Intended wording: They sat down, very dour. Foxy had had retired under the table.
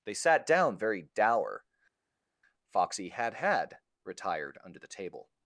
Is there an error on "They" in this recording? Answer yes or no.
no